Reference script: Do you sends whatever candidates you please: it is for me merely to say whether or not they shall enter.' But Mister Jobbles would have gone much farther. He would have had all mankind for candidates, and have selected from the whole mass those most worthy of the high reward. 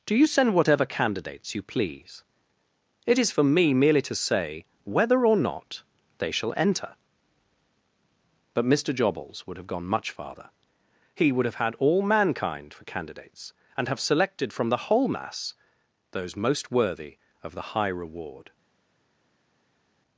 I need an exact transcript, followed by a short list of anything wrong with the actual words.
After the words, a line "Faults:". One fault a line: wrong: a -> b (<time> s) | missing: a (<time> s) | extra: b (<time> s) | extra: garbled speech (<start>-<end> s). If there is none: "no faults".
Do you send whatever candidates you please: it is for me merely to say whether or not they shall enter.' But Mister Jobbles would have gone much farther. He would have had all mankind for candidates, and have selected from the whole mass those most worthy of the high reward.
Faults:
wrong: sends -> send (0.2 s)